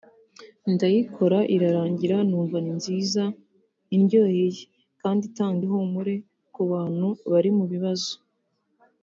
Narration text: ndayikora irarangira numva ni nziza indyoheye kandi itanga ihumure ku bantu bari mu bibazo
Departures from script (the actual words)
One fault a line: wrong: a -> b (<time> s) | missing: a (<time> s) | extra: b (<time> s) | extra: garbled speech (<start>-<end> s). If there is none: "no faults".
no faults